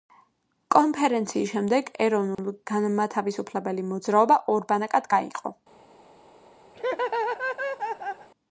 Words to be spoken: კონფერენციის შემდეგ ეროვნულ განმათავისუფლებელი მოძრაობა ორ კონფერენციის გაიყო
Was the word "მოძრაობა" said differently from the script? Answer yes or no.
no